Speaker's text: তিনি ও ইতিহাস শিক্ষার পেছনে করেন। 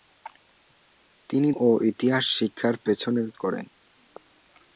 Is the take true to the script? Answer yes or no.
yes